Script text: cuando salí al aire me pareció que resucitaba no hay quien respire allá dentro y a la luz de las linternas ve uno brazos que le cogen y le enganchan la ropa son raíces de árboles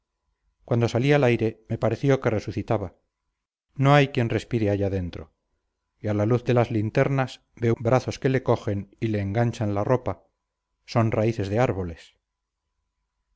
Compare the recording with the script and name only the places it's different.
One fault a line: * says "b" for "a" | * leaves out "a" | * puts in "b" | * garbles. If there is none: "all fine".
* leaves out "uno"